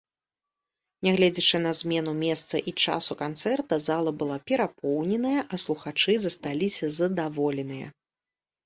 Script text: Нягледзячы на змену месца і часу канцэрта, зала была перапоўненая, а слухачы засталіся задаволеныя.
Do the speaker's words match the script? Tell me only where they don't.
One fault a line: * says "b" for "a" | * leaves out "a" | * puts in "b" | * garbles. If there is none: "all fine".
all fine